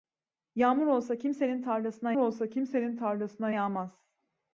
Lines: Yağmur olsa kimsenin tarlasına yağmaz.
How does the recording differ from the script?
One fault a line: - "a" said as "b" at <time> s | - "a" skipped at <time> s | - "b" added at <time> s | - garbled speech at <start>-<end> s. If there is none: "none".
- "olsa kimsenin tarlasına" added at 2.2 s